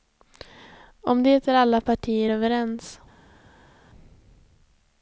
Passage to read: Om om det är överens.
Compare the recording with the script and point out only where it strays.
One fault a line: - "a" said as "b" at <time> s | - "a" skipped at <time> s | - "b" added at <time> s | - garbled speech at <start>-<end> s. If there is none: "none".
- "om" skipped at 1.2 s
- "alla partier" added at 1.5 s